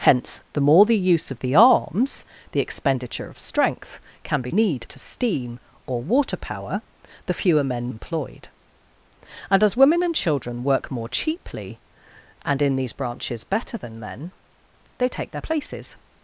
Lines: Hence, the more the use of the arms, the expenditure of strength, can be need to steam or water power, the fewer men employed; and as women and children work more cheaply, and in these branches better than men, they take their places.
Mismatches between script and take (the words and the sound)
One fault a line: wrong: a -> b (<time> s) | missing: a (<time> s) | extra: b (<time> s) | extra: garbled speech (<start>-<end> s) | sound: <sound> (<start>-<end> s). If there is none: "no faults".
no faults